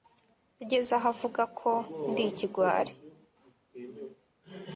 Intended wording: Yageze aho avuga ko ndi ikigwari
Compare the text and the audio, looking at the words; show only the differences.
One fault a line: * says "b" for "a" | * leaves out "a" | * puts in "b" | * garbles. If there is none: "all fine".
all fine